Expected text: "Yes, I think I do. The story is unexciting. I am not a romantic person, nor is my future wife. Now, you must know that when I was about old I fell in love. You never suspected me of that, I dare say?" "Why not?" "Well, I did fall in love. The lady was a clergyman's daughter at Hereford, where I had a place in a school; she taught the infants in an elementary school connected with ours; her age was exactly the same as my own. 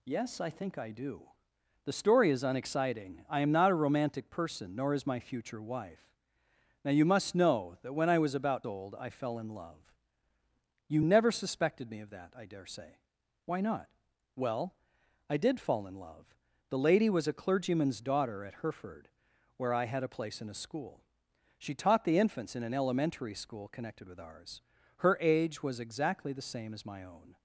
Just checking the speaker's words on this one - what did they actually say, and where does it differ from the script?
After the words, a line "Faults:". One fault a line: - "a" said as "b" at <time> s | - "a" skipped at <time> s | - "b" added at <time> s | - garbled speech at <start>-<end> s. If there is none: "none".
"Yes, I think I do. The story is unexciting. I am not a romantic person, nor is my future wife. Now, you must know that when I was about old I fell in love. You never suspected me of that, I dare say?" "Why not?" "Well, I did fall in love. The lady was a clergyman's daughter at Hereford, where I had a place in a school; she taught the infants in an elementary school connected with ours; her age was exactly the same as my own.
Faults:
none